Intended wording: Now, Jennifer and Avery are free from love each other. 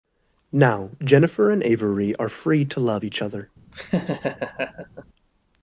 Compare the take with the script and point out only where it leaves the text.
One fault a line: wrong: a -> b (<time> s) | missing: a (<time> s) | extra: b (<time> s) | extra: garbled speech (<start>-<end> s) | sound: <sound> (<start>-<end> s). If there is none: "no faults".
wrong: from -> to (2.6 s)
sound: laugh (3.7-5.0 s)